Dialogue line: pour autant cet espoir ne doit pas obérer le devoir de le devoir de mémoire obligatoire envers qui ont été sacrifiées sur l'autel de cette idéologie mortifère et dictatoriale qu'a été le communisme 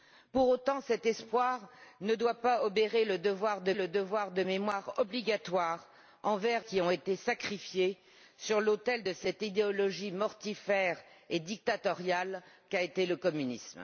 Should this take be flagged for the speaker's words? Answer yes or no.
no